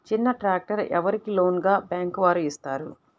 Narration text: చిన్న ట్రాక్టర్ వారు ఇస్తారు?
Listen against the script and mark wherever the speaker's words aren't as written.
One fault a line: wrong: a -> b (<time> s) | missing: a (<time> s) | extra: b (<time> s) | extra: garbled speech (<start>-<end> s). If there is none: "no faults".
extra: ఎవరికి లోన్గా బ్యాంక్ (0.9 s)